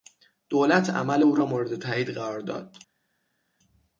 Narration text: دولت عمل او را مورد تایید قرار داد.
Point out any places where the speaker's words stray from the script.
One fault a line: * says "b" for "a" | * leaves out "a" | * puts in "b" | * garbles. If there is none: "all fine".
all fine